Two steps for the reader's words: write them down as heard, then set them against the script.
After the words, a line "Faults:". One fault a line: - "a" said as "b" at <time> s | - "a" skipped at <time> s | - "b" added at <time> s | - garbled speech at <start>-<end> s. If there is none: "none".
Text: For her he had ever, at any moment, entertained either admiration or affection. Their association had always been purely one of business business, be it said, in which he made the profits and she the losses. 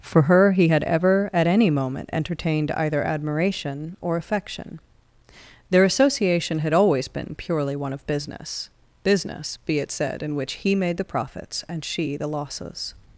For her he had ever, at any moment, entertained either admiration or affection. Their association had always been purely one of business business, be it said, in which he made the profits and she the losses.
Faults:
none